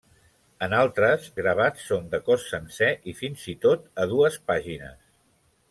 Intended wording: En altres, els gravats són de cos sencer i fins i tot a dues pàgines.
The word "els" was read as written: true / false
false